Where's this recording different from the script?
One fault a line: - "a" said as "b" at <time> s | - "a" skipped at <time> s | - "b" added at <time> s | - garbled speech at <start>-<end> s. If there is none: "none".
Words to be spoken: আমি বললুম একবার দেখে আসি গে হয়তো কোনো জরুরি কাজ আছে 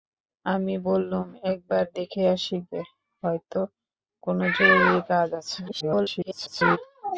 - garbled speech at 5.7-6.8 s